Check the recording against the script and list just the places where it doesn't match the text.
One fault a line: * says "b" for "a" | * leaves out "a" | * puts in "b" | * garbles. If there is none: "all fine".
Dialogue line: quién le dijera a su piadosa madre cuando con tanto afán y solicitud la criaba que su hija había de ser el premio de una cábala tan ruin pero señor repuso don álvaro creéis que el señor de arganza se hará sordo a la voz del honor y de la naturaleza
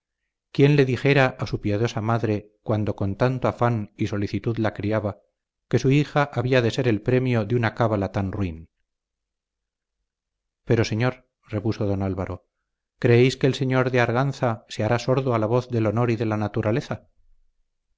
all fine